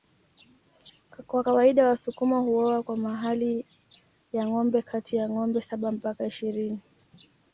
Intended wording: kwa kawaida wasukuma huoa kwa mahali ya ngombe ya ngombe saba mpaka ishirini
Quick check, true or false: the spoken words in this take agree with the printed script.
false